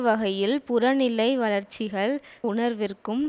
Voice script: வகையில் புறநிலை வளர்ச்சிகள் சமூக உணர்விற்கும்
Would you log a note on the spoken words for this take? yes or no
yes